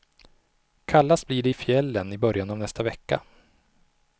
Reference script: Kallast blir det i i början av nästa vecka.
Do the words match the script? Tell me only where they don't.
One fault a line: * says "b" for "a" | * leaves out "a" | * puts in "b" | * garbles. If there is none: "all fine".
* puts in "fjällen"